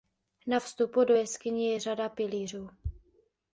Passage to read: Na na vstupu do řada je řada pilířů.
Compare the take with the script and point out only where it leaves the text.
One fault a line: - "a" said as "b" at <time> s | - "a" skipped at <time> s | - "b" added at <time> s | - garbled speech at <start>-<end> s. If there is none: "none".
- "na" skipped at 0.6 s
- "řada" said as "jeskyně" at 1.1 s